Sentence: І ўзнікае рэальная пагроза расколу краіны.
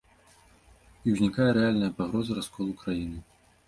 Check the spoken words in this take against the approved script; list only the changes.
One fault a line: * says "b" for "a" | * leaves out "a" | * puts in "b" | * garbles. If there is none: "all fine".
all fine